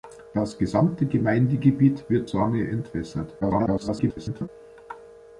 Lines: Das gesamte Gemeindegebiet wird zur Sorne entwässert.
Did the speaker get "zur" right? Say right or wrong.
wrong